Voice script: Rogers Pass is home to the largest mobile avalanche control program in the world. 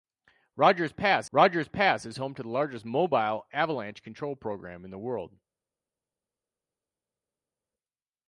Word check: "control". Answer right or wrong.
right